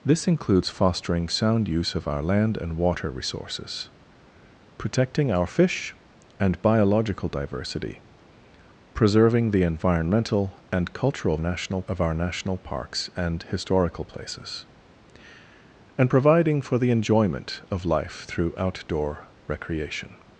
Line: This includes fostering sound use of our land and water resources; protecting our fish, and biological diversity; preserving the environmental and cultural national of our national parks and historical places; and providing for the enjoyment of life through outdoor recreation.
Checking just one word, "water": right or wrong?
right